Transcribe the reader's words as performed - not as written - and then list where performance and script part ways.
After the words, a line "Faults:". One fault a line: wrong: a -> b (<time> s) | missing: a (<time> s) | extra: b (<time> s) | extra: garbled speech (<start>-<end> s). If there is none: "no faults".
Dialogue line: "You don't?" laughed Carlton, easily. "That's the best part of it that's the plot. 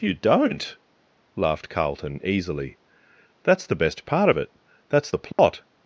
"You don't?" laughed Carlton, easily. "That's the best part of it that's the plot.
Faults:
no faults